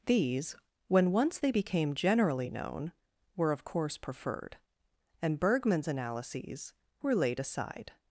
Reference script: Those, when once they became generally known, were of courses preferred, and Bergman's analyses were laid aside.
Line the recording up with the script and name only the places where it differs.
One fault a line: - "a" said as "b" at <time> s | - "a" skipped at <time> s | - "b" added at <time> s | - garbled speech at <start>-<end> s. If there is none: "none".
- "Those" said as "These" at 0.1 s
- "courses" said as "course" at 3.6 s